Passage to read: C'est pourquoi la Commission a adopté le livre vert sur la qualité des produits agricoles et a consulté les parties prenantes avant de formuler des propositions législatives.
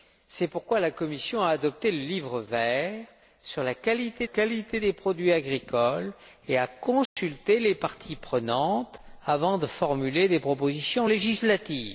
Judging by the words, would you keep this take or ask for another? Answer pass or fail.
fail